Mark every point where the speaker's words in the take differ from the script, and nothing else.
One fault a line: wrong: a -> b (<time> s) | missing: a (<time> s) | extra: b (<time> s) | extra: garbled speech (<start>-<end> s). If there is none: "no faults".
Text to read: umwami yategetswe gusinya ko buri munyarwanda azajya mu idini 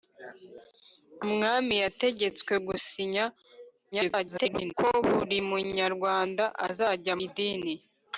extra: garbled speech (3.9-4.7 s)
missing: mu (7.1 s)